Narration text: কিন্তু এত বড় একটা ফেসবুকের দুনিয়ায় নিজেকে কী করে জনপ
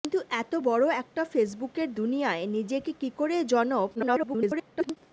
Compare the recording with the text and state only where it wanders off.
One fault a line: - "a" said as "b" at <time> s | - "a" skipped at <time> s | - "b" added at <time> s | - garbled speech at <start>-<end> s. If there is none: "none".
- garbled speech at 3.9-5.0 s